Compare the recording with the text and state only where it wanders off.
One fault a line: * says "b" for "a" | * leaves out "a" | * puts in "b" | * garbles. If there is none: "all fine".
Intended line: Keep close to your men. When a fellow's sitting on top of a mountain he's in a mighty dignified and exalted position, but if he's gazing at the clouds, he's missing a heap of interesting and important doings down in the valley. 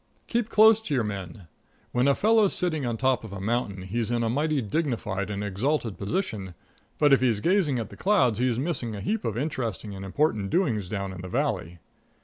all fine